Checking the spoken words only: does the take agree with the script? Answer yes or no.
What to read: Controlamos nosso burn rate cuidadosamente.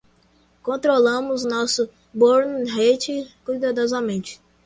yes